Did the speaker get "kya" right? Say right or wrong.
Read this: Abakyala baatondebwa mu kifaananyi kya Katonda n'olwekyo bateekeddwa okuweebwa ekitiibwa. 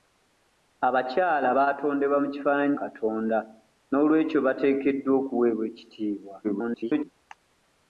wrong